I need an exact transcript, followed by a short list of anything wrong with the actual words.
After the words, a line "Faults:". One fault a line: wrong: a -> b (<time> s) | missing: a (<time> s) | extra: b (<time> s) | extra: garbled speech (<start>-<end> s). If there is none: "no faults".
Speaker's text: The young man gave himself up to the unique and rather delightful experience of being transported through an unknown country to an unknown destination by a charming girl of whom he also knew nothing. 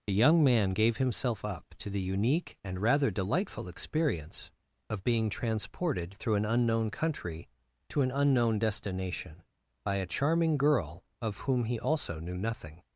The young man gave himself up to the unique and rather delightful experience of being transported through an unknown country to an unknown destination by a charming girl of whom he also knew nothing.
Faults:
no faults